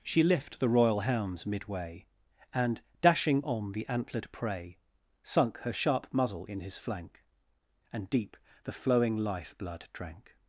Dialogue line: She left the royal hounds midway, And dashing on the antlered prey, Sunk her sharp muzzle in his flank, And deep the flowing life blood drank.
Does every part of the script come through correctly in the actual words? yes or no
no